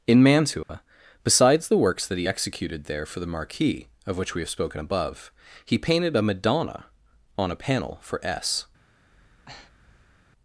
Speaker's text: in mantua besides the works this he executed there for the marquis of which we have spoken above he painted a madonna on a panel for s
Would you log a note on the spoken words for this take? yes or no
yes